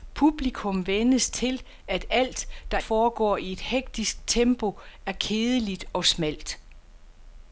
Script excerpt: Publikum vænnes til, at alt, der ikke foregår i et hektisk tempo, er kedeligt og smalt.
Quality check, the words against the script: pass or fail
fail